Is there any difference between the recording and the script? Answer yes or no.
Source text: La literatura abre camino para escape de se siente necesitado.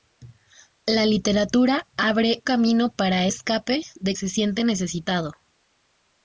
no